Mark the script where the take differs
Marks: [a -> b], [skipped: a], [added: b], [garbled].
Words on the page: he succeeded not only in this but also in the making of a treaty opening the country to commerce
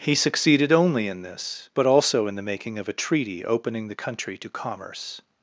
he succeeded [skipped: not] only in this but also in the making of a treaty opening the country to commerce